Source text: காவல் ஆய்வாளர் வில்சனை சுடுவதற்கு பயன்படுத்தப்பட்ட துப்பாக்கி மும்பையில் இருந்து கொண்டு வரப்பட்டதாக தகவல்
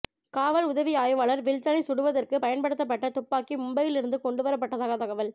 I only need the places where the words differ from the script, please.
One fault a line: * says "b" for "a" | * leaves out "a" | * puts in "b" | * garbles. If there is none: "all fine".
* puts in "உதவி"